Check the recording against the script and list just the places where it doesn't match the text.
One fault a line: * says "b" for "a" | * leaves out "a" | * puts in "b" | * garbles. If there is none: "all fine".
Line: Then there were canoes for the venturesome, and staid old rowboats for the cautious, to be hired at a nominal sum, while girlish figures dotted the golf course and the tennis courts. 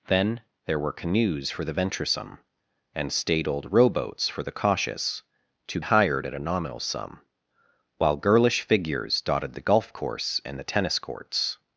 * leaves out "be"